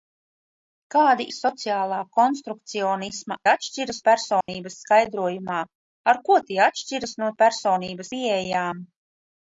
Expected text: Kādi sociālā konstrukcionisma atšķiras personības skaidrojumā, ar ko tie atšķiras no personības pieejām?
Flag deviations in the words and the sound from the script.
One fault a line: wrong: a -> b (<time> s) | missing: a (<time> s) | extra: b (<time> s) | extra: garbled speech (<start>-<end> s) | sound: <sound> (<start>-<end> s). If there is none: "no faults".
sound: dropout (4.4-4.5 s)